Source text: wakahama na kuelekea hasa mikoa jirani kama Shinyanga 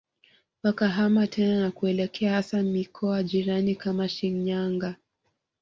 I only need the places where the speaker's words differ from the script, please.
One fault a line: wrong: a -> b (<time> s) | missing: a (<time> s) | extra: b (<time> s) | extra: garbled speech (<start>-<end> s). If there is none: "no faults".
extra: tena (1.3 s)